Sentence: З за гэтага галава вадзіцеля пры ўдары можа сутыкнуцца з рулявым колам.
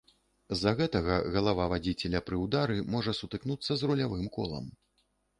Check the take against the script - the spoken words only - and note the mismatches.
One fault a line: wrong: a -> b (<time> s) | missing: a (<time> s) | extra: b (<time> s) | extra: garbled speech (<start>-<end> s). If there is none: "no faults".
no faults